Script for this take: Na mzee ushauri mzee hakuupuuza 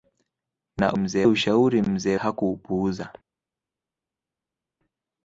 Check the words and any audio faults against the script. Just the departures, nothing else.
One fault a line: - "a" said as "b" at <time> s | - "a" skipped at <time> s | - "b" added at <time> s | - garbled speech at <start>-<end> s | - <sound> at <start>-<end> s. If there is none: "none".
none